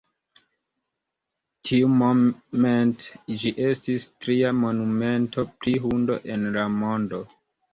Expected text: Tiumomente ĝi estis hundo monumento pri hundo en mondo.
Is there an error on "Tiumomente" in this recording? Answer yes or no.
no